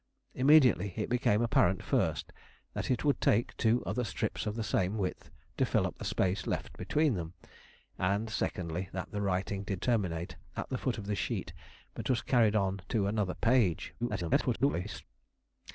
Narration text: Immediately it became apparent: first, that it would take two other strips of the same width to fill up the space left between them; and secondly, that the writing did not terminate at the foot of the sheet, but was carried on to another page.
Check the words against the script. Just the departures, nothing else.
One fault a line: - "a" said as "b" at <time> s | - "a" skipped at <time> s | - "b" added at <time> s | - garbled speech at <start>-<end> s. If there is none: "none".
- "not" skipped at 9.8 s
- garbled speech at 14.0-15.0 s